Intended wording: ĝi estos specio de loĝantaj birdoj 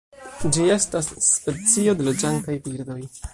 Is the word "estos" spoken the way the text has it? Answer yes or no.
no